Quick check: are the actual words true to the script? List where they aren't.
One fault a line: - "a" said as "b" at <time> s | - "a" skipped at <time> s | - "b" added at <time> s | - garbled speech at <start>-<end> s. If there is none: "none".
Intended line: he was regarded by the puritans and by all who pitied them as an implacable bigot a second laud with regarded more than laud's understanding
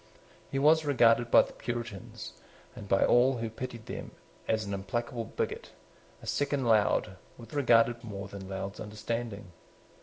none